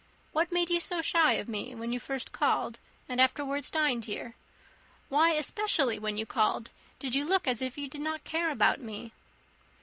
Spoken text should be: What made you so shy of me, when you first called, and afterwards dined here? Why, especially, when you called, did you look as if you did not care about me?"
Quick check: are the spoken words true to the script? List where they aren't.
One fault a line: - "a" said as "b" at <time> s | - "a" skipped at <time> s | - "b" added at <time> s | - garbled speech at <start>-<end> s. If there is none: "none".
none